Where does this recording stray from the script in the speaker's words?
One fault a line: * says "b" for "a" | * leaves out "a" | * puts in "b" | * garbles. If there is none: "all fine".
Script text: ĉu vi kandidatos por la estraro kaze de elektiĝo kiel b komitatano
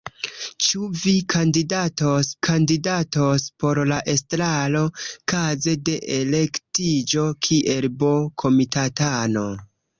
* puts in "kandidatos"